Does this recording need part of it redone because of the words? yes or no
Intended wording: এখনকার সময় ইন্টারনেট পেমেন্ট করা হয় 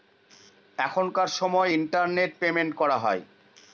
no